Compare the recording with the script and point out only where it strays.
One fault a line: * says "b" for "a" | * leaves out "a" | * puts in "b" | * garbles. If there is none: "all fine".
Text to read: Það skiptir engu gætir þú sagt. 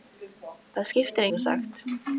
* leaves out "engu gætir"